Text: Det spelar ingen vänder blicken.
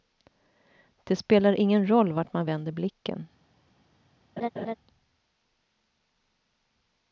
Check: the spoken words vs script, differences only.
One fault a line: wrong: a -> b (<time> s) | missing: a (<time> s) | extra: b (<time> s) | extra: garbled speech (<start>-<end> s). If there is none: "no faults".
extra: roll vart man (1.9 s)